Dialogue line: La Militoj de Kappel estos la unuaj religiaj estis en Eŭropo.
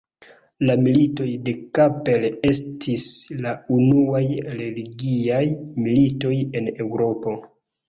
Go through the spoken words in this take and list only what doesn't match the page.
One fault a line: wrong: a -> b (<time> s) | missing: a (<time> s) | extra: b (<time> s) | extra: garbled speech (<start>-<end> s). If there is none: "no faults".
wrong: estos -> estis (2.5 s)
wrong: estis -> militoj (5.8 s)